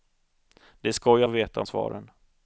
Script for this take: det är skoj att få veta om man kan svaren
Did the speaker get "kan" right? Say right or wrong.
wrong